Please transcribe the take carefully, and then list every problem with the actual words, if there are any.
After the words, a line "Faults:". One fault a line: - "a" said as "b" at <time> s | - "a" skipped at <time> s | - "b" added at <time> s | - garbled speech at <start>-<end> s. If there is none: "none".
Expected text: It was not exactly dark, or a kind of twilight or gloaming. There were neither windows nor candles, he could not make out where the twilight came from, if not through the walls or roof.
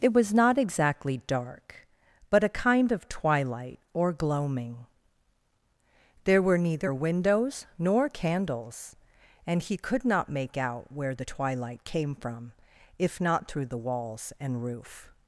It was not exactly dark, but a kind of twilight or gloaming. There were neither windows nor candles, and he could not make out where the twilight came from, if not through the walls and roof.
Faults:
- "or" said as "but" at 2.3 s
- "and" added at 9.4 s
- "or" said as "and" at 14.4 s